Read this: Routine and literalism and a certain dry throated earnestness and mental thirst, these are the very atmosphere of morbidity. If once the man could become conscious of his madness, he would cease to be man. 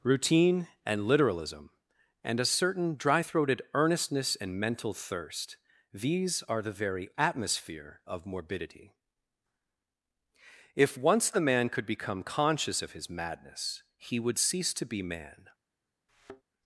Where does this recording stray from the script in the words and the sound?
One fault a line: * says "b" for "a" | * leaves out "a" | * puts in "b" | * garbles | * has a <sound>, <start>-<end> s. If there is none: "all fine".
* has a thud, 16.1-16.4 s